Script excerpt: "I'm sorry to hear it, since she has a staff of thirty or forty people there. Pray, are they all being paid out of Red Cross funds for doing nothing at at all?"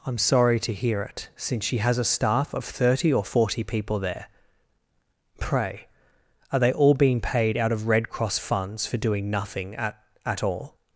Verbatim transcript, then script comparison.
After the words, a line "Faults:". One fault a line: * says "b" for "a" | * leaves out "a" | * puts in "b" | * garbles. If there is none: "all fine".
"I'm sorry to hear it, since she has a staff of thirty or forty people there. Pray, are they all being paid out of Red Cross funds for doing nothing at at all?"
Faults:
all fine